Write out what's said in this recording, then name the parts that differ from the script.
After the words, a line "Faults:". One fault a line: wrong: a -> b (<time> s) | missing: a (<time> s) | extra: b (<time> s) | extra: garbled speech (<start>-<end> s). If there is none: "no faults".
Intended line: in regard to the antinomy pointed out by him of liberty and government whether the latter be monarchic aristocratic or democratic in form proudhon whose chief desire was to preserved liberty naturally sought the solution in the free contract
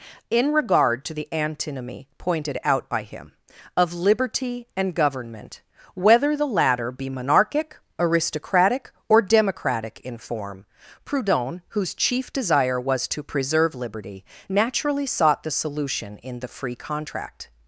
in regard to the antinomy pointed out by him of liberty and government whether the latter be monarchic aristocratic or democratic in form proudhon whose chief desire was to preserve liberty naturally sought the solution in the free contract
Faults:
wrong: preserved -> preserve (13.2 s)